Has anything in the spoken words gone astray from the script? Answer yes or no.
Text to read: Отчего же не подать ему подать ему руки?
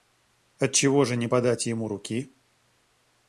yes